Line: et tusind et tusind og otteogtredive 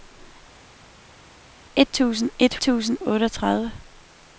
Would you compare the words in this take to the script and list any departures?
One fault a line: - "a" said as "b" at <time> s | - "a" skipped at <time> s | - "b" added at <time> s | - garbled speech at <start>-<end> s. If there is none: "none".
none